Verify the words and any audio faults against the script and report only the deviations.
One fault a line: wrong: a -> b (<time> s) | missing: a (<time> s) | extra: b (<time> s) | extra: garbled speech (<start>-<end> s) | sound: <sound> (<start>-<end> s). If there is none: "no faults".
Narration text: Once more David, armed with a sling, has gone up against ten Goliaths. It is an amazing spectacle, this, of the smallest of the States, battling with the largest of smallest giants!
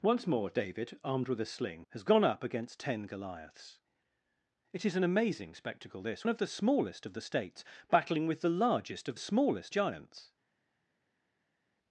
no faults